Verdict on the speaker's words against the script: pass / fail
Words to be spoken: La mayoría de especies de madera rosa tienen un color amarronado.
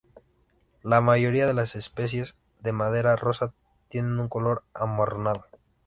fail